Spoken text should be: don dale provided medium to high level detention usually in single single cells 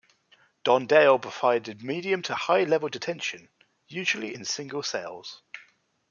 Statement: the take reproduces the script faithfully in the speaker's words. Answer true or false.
false